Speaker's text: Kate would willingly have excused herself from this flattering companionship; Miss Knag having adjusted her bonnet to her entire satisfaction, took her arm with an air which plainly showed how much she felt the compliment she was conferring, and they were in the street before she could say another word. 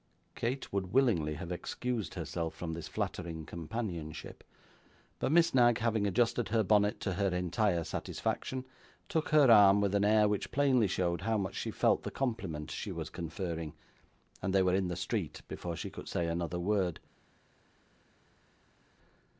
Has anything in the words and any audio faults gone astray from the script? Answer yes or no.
yes